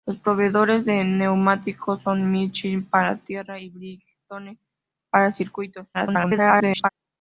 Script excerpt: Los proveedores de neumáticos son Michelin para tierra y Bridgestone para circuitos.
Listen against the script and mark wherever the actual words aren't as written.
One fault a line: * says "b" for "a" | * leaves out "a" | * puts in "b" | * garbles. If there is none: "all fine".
* garbles